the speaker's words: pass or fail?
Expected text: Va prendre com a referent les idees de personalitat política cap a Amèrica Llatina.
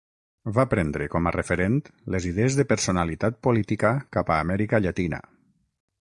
pass